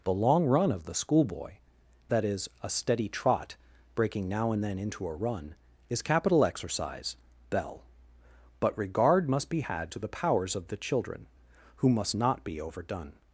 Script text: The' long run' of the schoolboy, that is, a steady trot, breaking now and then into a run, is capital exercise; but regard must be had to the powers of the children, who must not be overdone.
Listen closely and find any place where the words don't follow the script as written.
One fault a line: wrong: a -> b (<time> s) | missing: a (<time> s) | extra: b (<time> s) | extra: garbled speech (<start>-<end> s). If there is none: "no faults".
extra: bell (7.5 s)